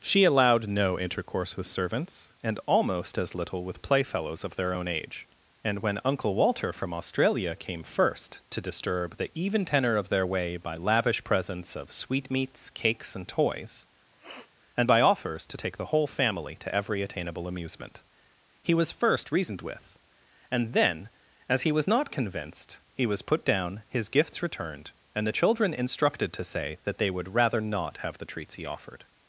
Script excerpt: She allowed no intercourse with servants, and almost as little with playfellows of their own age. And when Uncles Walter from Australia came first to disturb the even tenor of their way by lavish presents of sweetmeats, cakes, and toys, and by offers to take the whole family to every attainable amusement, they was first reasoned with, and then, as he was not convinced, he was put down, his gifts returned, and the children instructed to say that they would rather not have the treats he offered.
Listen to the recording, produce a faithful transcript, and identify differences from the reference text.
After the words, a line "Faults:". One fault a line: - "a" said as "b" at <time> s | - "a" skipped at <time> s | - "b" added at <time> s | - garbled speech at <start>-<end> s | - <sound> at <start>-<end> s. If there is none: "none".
She allowed no intercourse with servants, and almost as little with playfellows of their own age. And when Uncle Walter from Australia came first to disturb the even tenor of their way by lavish presents of sweetmeats, cakes, and toys, and by offers to take the whole family to every attainable amusement, he was first reasoned with, and then, as he was not convinced, he was put down, his gifts returned, and the children instructed to say that they would rather not have the treats he offered.
Faults:
- "Uncles" said as "Uncle" at 6.0 s
- sniff at 14.1-14.5 s
- "they" said as "he" at 18.6 s